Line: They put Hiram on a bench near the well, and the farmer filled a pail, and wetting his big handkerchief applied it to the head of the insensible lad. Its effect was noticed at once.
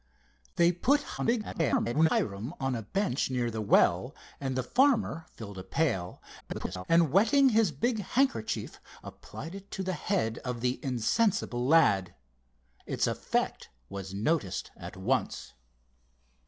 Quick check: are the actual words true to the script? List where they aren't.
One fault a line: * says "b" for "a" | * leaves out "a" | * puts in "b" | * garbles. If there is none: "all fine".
* garbles
* garbles